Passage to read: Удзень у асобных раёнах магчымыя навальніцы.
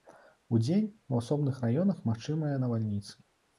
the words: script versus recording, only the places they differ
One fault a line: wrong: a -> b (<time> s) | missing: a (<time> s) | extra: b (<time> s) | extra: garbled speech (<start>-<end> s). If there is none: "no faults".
no faults